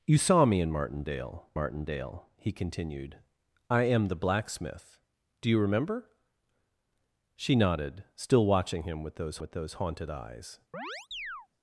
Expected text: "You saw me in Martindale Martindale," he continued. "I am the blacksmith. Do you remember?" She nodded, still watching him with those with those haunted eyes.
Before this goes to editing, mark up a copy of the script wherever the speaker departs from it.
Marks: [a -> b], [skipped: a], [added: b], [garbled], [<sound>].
"You saw me in Martindale Martindale," he continued. "I am the blacksmith. Do you remember?" She nodded, still watching him with those with those haunted eyes. [chirp]